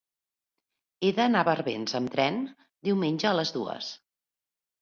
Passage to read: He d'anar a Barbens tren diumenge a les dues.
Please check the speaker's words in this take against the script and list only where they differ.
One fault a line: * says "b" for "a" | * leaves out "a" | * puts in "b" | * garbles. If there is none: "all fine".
* puts in "amb"